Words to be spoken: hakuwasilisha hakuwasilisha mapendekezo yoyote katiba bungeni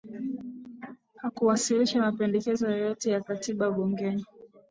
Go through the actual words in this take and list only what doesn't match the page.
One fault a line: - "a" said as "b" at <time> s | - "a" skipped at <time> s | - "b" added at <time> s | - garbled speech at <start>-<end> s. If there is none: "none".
- "hakuwasilisha" skipped at 2.0 s
- "ya" added at 3.1 s